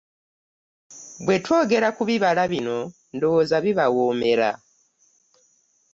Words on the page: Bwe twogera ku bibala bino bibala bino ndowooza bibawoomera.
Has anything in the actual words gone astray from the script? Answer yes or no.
yes